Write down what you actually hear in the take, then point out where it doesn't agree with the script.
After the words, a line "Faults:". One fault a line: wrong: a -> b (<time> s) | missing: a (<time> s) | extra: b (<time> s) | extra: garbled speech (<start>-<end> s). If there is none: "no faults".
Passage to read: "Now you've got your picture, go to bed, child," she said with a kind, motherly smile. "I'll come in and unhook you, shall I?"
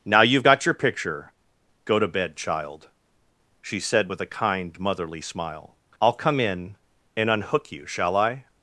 "Now you've got your picture, go to bed, child," she said with a kind, motherly smile. "I'll come in and unhook you, shall I?"
Faults:
no faults